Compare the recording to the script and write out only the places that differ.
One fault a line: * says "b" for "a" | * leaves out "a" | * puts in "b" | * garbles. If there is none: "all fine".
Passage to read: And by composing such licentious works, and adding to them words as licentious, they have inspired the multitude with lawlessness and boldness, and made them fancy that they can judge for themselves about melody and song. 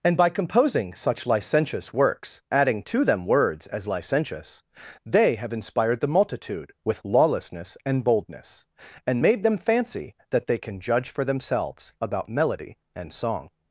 * leaves out "and"